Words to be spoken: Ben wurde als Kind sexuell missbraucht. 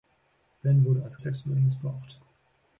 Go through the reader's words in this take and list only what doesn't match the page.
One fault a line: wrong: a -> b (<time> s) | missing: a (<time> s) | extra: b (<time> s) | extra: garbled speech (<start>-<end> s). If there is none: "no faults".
missing: Kind (1.2 s)